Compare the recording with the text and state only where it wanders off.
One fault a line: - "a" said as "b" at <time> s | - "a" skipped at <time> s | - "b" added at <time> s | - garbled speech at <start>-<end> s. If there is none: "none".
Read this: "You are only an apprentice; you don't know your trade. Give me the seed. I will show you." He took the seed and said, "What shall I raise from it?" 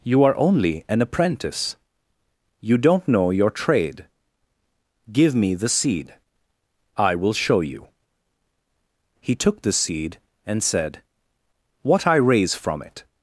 - "shall" skipped at 12.1 s